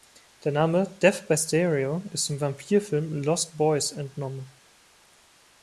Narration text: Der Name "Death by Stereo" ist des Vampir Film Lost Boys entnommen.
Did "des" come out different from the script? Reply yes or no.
yes